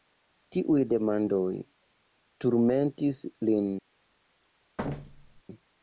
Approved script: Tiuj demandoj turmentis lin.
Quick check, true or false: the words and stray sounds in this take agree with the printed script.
false